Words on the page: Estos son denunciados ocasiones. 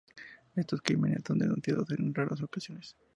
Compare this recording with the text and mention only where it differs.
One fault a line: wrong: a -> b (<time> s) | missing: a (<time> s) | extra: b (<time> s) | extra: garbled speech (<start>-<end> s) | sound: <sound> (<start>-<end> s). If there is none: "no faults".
extra: crímenes (0.8 s)
extra: en raras (1.9 s)